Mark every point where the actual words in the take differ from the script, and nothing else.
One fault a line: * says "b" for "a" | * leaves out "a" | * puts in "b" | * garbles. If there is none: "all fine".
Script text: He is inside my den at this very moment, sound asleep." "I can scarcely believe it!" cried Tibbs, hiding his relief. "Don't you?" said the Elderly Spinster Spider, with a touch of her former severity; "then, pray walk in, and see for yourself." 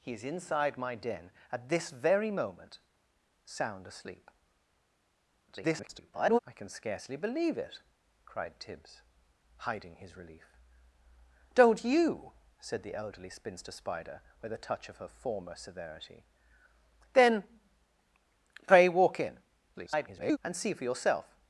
* garbles
* garbles